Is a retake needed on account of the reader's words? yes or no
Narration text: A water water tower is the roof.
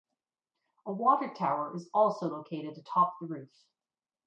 yes